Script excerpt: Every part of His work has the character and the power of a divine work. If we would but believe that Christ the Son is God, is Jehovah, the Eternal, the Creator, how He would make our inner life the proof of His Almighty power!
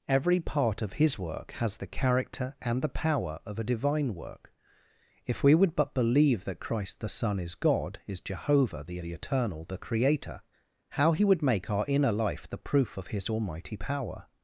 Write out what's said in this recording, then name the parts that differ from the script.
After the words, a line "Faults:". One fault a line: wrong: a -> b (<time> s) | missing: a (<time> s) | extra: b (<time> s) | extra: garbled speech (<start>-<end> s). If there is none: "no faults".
Every part of His work has the character and the power of a divine work. If we would but believe that Christ the Son is God, is Jehovah, the the Eternal, the Creator, how He would make our inner life the proof of His Almighty power!
Faults:
extra: the (9.0 s)